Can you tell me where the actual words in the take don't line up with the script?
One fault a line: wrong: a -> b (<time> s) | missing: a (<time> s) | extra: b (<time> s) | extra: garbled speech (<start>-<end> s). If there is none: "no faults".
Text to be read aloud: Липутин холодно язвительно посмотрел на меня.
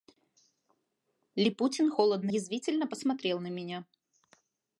no faults